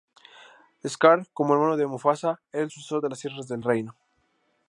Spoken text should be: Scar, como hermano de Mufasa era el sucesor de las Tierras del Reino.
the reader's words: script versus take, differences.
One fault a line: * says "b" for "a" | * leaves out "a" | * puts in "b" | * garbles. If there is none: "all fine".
all fine